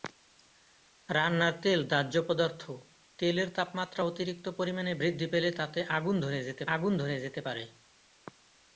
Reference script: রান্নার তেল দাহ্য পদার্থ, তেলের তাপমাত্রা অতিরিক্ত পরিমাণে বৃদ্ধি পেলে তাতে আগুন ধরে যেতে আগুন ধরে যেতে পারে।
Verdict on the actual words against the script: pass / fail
pass